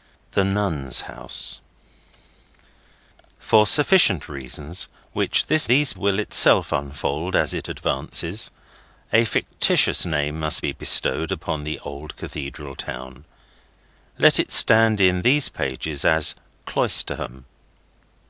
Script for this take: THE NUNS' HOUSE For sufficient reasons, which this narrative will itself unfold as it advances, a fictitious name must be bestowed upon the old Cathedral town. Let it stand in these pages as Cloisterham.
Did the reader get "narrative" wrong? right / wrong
wrong